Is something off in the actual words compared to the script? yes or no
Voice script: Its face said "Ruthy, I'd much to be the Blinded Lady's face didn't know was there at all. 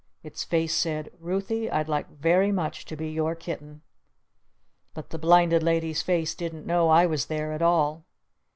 yes